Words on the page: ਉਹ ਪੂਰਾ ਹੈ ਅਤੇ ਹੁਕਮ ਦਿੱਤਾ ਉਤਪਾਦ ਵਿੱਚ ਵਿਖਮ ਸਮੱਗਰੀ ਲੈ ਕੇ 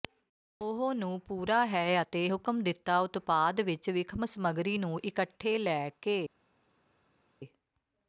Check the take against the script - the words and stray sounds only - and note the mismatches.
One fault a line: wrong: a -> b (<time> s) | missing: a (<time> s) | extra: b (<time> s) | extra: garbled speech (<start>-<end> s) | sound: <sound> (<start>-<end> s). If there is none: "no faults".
extra: ਨੂੰ (0.9 s)
extra: ਨੂੰ ਇਕੱਠੇ (4.8 s)